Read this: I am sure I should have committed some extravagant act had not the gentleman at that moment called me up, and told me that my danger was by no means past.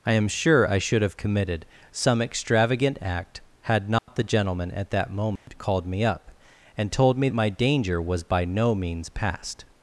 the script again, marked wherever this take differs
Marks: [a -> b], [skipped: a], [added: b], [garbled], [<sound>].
I am sure I should have committed some extravagant act had not [dropout] the gentleman at that moment [dropout] called me up, and told me [skipped: that] my danger was by no means past.